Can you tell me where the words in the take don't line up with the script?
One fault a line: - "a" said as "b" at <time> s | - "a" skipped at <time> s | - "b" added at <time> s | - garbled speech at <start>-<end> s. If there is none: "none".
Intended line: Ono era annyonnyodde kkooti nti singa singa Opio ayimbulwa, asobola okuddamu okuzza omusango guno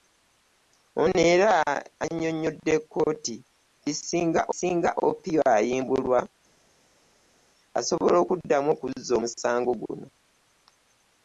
none